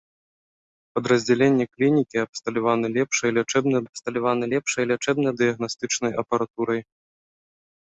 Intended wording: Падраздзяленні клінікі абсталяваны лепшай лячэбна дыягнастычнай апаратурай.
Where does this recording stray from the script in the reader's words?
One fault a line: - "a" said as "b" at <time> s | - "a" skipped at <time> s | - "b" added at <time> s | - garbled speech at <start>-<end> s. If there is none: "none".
- "абсталяваны лепшай лячэбна" added at 3.9 s